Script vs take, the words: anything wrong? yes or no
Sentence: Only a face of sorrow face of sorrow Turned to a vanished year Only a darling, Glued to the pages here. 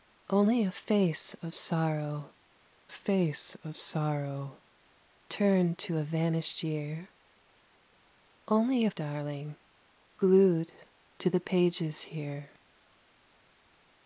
no